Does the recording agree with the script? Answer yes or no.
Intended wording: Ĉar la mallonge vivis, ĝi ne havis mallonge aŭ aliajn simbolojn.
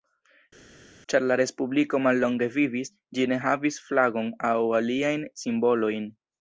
no